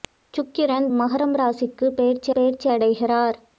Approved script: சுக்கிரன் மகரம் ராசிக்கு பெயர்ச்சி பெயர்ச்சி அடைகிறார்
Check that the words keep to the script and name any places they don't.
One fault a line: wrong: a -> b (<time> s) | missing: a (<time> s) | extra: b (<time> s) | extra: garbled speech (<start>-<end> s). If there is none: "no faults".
no faults